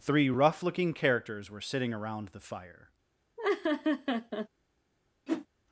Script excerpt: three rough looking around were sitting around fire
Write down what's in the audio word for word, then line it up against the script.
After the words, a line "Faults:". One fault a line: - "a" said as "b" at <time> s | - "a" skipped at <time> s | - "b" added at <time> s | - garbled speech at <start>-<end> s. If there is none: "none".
three rough looking characters were sitting around the fire
Faults:
- "around" said as "characters" at 0.9 s
- "the" added at 2.3 s